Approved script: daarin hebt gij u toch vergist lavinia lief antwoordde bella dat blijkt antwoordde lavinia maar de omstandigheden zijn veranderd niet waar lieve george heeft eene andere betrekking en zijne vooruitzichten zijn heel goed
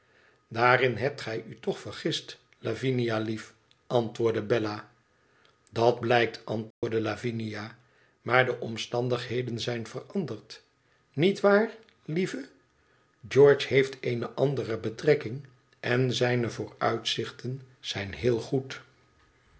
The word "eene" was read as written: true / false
true